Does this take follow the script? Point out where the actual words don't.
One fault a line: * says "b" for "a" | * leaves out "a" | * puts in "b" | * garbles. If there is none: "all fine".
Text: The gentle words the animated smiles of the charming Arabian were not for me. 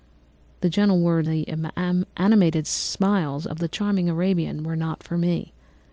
all fine